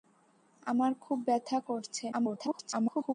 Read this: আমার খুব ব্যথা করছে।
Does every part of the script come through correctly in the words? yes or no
no